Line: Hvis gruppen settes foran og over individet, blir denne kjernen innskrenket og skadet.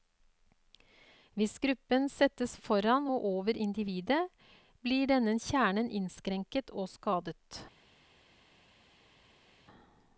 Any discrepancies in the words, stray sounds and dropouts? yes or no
no